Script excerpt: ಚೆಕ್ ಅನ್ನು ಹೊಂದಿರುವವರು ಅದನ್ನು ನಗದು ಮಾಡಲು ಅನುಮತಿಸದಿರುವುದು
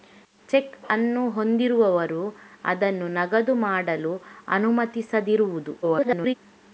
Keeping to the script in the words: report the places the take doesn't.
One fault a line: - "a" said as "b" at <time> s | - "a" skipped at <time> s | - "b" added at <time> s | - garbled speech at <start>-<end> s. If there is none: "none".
- garbled speech at 5.8-6.3 s